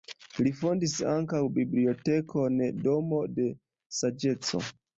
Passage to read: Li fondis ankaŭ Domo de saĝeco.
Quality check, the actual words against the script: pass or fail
fail